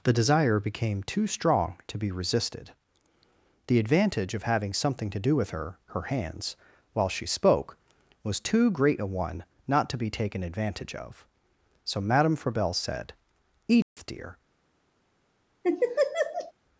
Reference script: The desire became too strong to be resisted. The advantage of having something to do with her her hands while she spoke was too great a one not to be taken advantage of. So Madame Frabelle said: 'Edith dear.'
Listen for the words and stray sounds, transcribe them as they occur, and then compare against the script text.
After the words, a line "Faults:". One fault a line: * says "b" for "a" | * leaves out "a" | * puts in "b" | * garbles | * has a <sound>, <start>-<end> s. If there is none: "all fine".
The desire became too strong to be resisted. The advantage of having something to do with her her hands while she spoke was too great a one not to be taken advantage of. So Madame Frabelle said: 'Edith dear.'
Faults:
* has a dropout, 13.8-14.0 s
* has a laugh, 15.6-16.5 s